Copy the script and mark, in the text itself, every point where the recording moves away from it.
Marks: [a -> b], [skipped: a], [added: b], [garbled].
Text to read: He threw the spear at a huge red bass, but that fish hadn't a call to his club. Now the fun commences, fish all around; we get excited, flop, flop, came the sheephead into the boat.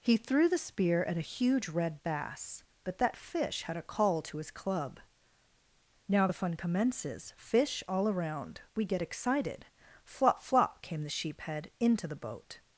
He threw the spear at a huge red bass, but that fish [hadn't -> had] a call to his club. Now the fun commences, fish all around; we get excited, flop, flop, came the sheephead into the boat.